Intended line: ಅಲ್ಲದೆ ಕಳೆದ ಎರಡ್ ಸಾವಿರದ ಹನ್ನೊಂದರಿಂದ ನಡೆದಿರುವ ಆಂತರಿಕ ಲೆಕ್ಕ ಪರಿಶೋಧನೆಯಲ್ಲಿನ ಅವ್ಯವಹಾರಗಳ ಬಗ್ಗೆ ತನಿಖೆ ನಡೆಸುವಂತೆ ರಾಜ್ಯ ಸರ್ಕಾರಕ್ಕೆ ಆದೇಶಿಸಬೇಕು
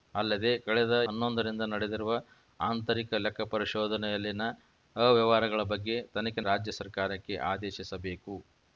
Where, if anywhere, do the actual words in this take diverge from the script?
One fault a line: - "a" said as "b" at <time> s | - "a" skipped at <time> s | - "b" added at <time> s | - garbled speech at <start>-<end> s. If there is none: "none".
- "ಎರಡ್ ಸಾವಿರದ" skipped at 0.9 s
- "ನಡೆಸುವಂತೆ" skipped at 6.4 s